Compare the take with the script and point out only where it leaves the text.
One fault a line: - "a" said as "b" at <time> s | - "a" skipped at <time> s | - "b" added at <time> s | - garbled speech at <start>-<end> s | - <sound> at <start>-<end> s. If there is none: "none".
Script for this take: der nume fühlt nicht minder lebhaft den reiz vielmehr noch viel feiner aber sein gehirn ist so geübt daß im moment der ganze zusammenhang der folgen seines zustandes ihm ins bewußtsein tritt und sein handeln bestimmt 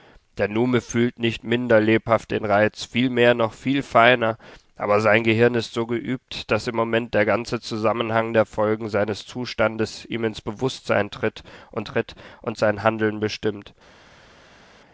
- "tritt und" added at 11.8 s